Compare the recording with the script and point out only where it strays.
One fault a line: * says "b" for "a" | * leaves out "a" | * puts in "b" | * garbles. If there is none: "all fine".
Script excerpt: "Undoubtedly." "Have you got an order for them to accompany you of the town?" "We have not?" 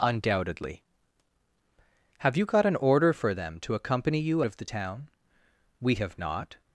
all fine